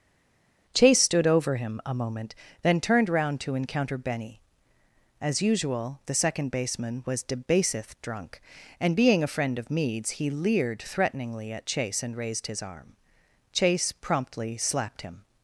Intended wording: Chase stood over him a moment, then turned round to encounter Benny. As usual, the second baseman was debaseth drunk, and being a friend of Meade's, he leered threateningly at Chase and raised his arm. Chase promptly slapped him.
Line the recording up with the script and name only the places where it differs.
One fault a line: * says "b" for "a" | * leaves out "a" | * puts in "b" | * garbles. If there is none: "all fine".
all fine